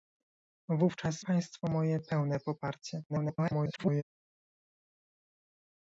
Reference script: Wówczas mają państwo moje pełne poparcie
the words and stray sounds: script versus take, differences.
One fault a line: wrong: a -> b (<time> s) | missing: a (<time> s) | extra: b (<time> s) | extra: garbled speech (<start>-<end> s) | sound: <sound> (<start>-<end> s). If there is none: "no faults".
missing: mają (1.2 s)
extra: garbled speech (3.1-4.0 s)